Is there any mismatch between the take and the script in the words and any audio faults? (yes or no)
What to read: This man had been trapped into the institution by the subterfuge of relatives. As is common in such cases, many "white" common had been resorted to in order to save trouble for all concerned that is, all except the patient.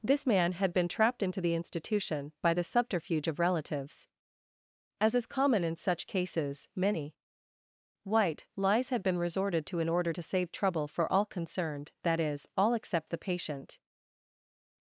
yes